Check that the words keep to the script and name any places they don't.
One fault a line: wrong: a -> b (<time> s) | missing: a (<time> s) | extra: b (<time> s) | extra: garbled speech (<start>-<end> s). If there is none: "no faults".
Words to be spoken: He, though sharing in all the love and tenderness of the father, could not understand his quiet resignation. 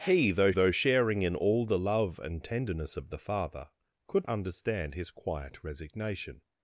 extra: though (0.5 s)
missing: not (4.3 s)